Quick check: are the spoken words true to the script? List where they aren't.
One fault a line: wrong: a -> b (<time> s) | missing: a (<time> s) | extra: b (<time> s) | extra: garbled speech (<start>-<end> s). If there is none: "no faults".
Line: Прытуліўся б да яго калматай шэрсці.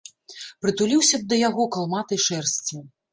no faults